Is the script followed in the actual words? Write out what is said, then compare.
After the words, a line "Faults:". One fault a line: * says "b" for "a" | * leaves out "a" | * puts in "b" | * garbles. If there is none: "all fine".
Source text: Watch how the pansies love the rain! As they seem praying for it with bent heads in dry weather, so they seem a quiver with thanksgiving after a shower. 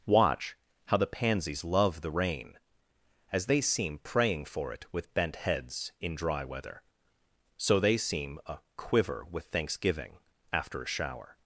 Watch how the pansies love the rain! As they seem praying for it with bent heads in dry weather, so they seem a quiver with thanksgiving after a shower.
Faults:
all fine